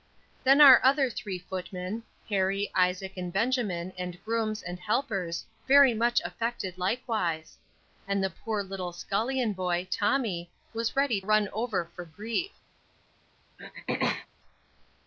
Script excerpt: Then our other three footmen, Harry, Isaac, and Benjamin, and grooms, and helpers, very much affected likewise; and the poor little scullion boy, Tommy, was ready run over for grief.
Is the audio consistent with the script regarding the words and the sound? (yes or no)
no